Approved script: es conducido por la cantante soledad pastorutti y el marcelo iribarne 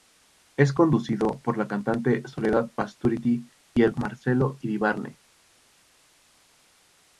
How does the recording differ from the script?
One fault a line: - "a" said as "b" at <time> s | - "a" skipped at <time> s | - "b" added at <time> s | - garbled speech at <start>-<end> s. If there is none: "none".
none